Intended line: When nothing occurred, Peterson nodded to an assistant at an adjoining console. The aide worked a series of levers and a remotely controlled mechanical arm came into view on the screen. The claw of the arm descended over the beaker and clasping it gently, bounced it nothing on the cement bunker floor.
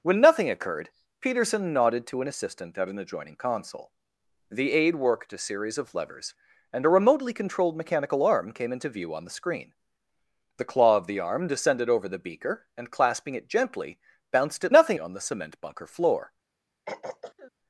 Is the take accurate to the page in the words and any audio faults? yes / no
no